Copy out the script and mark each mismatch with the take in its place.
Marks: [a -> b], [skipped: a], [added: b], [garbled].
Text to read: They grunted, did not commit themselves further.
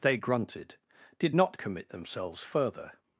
They grunted, did not commit themselves further.